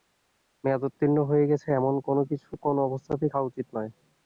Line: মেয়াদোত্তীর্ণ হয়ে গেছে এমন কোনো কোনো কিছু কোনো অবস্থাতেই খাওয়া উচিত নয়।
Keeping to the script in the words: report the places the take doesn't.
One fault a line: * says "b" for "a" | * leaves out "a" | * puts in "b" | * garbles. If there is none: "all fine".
* leaves out "কোনো"